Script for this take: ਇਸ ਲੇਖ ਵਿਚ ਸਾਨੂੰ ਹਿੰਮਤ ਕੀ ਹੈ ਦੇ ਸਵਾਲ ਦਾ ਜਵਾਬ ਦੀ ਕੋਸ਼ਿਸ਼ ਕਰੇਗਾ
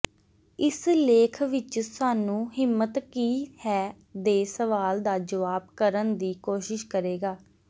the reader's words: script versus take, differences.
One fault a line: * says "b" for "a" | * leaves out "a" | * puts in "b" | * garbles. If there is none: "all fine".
* puts in "ਕਰਨ"